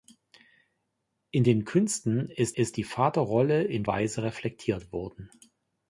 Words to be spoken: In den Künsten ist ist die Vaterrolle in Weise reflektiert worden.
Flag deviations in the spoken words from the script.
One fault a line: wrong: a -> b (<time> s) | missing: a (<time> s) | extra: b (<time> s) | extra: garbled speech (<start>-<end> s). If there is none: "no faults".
no faults